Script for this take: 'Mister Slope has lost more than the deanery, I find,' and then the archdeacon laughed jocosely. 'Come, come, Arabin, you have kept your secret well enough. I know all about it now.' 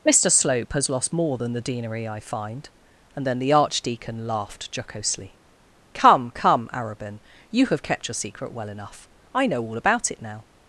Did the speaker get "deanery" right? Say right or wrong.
right